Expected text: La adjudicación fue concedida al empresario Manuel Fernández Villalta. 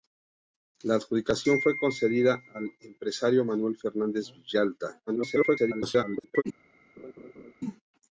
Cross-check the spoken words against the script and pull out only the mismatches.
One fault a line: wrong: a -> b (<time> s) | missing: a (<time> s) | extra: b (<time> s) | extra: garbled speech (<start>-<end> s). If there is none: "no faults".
extra: garbled speech (5.1-6.4 s)